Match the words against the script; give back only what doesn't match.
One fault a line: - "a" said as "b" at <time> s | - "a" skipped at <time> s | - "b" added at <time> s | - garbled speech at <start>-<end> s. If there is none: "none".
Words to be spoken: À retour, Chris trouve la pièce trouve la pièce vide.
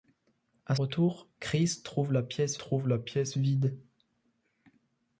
none